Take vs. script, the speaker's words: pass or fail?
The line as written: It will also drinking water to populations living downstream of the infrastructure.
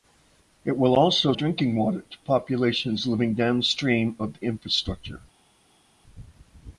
pass